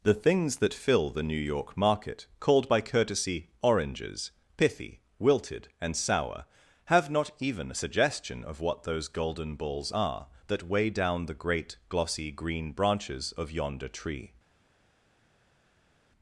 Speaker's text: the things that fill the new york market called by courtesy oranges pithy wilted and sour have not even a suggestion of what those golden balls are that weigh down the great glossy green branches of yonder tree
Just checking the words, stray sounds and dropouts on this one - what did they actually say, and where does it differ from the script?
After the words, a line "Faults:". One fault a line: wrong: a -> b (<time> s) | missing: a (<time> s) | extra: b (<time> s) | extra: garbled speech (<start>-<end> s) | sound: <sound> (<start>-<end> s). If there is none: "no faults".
the things that fill the new york market called by courtesy oranges pithy wilted and sour have not even a suggestion of what those golden balls are that weigh down the great glossy green branches of yonder tree
Faults:
no faults